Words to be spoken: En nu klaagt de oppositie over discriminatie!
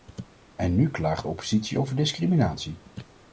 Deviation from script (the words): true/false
false